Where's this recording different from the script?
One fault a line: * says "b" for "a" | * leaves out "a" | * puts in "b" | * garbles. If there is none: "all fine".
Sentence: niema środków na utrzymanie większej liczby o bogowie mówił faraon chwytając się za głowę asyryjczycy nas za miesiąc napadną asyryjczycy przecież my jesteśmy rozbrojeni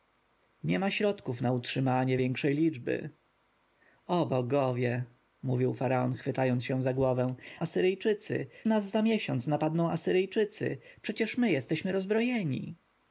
all fine